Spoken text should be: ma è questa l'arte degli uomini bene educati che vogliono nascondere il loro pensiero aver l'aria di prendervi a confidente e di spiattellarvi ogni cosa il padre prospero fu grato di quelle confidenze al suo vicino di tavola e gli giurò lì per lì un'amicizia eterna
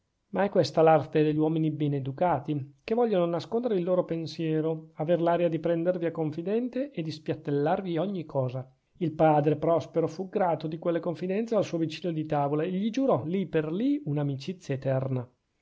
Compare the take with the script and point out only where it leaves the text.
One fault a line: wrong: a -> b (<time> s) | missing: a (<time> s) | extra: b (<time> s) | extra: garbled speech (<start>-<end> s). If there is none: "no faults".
no faults